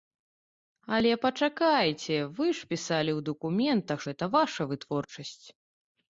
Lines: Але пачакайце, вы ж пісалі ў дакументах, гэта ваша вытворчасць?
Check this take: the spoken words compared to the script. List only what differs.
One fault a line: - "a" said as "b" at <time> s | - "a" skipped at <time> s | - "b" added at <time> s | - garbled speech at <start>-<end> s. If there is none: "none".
none